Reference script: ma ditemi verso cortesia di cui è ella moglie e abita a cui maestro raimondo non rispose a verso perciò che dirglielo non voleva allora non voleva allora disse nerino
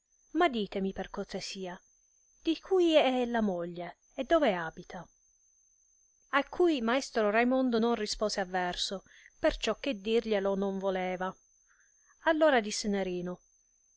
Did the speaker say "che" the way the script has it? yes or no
yes